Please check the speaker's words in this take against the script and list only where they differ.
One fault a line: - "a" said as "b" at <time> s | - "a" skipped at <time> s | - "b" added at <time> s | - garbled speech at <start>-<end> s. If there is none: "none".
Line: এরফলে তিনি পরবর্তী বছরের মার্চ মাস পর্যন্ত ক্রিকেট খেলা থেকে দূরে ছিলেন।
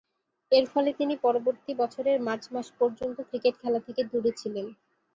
none